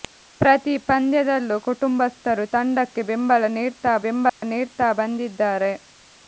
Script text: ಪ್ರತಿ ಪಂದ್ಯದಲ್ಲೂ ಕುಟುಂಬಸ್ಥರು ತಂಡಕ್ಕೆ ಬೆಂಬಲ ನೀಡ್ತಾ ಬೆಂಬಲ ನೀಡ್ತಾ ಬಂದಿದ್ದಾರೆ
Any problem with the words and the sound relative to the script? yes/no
yes